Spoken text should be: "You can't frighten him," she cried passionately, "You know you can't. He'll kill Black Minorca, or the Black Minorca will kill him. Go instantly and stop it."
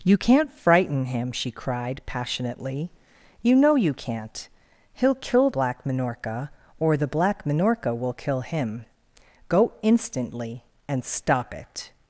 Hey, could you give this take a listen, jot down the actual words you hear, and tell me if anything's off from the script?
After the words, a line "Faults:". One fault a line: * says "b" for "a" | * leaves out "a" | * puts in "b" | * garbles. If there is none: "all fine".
"You can't frighten him," she cried passionately, "You know you can't. He'll kill Black Minorca, or the Black Minorca will kill him. Go instantly and stop it."
Faults:
all fine